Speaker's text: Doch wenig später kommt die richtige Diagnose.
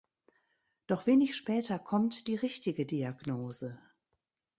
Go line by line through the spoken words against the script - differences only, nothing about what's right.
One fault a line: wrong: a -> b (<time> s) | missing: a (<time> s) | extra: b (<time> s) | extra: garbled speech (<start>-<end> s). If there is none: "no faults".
no faults